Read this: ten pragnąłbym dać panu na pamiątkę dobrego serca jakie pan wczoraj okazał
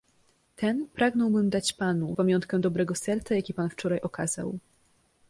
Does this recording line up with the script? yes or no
no